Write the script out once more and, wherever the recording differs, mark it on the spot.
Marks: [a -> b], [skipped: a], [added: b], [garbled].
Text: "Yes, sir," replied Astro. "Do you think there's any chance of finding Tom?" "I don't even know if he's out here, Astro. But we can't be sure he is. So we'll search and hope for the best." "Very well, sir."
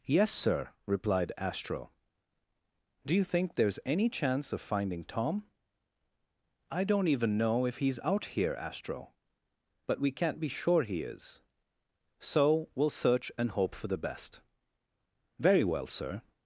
"Yes, sir," replied Astro. "Do you think there's any chance of finding Tom?" "I don't even know if he's out here, Astro. But we can't be sure he is. So we'll search and hope for the best." "Very well, sir."